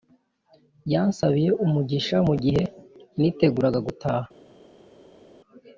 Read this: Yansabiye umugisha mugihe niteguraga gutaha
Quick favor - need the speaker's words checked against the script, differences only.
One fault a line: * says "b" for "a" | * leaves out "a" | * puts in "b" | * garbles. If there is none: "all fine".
all fine